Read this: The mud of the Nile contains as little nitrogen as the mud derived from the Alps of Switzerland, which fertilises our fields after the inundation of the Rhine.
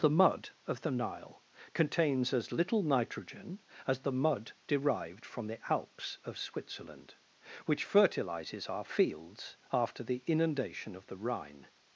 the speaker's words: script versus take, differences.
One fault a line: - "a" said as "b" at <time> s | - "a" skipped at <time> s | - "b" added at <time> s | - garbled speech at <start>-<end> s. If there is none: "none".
none